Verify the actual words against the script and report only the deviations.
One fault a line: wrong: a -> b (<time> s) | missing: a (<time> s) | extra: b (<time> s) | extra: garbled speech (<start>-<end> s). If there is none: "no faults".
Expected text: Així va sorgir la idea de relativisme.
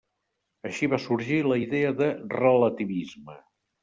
no faults